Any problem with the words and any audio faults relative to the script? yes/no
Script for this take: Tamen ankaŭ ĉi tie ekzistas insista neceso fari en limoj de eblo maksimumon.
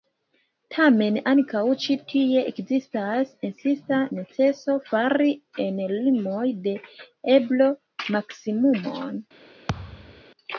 yes